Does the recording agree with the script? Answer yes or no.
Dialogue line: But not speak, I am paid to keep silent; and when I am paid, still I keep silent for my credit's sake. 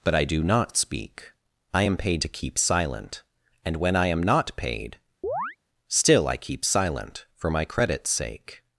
no